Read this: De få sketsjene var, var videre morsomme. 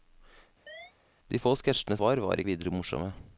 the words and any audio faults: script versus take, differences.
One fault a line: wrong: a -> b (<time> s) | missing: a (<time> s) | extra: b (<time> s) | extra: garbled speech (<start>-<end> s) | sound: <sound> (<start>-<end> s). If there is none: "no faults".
sound: chirp (0.7-0.9 s)